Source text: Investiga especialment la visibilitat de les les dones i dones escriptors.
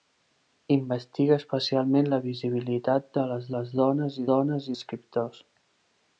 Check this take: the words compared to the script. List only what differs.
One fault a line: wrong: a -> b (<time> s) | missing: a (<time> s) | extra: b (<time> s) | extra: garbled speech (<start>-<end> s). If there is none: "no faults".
no faults